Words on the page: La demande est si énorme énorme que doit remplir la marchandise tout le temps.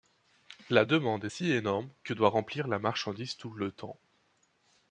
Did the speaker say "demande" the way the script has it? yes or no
yes